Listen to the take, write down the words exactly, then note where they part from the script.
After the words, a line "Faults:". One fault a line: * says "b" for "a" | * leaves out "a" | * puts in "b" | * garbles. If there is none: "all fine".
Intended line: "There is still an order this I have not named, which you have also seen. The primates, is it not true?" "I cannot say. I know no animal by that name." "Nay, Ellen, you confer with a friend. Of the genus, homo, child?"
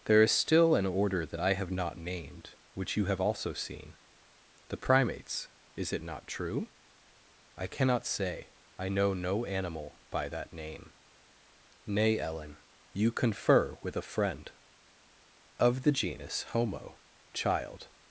"There is still an order that I have not named, which you have also seen. The primates, is it not true?" "I cannot say. I know no animal by that name." "Nay, Ellen, you confer with a friend. Of the genus, homo, child?"
Faults:
* says "that" for "this"